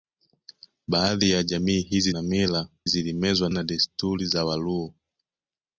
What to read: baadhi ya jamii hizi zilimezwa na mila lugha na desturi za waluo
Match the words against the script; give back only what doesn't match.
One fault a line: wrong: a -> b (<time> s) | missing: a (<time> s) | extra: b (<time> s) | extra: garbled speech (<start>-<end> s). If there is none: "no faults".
missing: zilimezwa (2.1 s)
wrong: lugha -> zilimezwa (2.9 s)